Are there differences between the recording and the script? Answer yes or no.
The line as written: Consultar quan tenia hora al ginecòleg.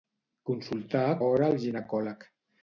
yes